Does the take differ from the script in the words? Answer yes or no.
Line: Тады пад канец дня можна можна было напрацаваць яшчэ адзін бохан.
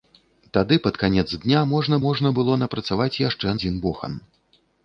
no